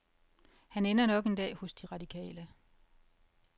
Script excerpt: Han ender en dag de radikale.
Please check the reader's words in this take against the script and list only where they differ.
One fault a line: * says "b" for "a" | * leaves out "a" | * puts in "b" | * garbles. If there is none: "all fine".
* puts in "nok"
* puts in "hos"